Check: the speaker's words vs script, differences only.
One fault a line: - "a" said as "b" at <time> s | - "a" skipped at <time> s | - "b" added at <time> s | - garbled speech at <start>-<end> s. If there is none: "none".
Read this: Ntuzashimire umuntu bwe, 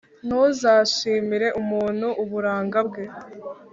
- "uburanga" added at 2.2 s